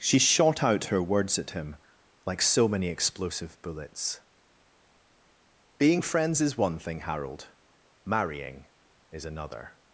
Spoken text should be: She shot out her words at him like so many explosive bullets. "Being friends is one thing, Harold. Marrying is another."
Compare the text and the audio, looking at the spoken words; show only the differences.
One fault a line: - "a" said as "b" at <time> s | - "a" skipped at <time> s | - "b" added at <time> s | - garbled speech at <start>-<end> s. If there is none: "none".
none